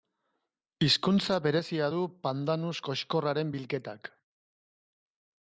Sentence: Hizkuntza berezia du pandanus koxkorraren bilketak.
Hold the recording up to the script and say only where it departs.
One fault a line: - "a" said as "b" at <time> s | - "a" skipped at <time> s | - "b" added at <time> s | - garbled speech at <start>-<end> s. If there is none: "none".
none